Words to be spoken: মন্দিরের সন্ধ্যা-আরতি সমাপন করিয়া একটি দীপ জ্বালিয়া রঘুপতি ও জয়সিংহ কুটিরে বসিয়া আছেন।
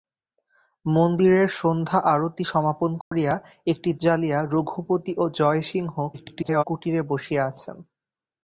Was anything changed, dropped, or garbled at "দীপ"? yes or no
yes